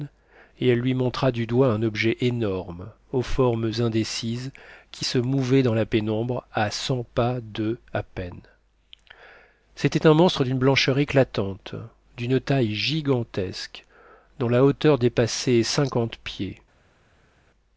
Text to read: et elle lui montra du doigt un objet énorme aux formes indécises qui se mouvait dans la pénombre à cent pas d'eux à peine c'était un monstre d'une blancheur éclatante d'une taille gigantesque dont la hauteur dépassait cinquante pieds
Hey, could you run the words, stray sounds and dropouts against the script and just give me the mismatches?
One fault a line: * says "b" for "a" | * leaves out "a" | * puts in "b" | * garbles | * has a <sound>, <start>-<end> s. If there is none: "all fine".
all fine